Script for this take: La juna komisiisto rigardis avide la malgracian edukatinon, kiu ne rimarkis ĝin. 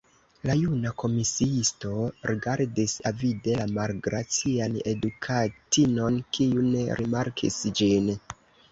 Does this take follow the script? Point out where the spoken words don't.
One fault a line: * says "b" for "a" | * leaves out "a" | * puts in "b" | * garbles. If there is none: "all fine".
all fine